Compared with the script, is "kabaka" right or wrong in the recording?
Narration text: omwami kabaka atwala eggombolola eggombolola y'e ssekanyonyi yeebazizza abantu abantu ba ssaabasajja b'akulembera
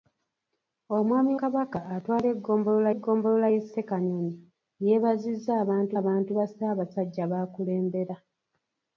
right